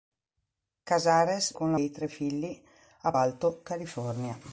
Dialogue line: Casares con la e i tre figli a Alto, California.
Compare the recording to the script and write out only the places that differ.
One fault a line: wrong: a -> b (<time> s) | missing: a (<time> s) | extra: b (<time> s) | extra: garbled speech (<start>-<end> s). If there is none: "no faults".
no faults